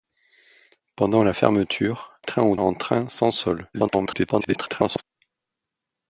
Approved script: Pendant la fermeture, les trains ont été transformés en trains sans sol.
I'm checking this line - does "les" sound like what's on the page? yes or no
no